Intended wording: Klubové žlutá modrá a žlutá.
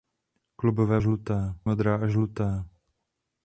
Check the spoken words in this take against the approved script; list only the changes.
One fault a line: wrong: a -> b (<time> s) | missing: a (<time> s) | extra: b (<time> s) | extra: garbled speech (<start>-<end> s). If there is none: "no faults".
no faults